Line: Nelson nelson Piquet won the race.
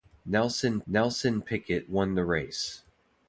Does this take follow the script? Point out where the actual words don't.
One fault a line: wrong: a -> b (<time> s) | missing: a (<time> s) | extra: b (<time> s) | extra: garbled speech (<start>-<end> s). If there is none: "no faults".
no faults